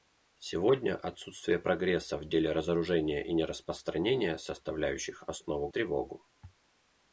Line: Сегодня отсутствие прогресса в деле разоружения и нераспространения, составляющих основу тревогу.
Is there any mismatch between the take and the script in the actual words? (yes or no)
no